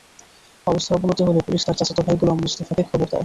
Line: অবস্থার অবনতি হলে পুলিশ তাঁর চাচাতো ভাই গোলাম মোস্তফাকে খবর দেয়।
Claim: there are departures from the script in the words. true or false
false